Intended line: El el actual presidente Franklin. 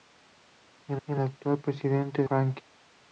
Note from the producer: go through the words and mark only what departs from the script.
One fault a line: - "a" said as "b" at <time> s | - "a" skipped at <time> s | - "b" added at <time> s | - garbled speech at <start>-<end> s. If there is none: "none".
none